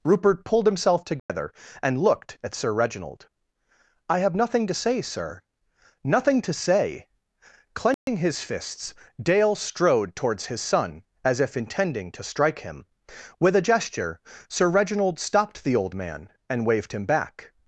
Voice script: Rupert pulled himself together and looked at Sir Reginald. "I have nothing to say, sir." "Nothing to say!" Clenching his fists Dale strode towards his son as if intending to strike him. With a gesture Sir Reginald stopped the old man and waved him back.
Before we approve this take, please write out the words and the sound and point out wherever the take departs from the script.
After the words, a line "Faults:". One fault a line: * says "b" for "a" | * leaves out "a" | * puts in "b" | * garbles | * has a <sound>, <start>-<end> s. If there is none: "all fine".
Rupert pulled himself together and looked at Sir Reginald. "I have nothing to say, sir." "Nothing to say!" Clenching his fists Dale strode towards his son as if intending to strike him. With a gesture Sir Reginald stopped the old man and waved him back.
Faults:
* has a dropout, 1.2-1.3 s
* has a dropout, 7.9-8.1 s